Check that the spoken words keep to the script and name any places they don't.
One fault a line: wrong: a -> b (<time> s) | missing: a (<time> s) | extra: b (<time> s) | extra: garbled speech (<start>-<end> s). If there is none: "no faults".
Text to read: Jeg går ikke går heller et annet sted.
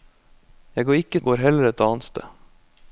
no faults